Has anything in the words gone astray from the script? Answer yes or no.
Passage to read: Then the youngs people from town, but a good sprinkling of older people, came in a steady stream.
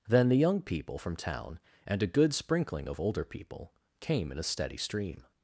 yes